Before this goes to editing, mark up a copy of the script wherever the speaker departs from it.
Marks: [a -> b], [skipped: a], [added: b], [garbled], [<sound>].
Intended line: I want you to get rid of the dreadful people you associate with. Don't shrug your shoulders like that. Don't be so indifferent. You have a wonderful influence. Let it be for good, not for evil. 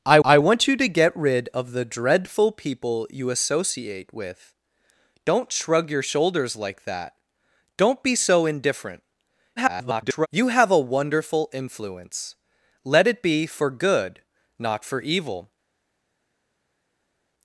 I [added: I] want you to get rid of the dreadful people you associate with. Don't shrug your shoulders like that. Don't be so indifferent. [garbled] You have a wonderful influence. Let it be for good, not for evil.